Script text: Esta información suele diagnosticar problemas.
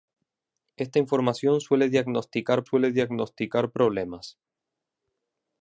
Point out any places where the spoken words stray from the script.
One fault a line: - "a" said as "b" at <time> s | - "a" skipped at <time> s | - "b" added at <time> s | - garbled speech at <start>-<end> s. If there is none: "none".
- "suele diagnosticar" added at 2.6 s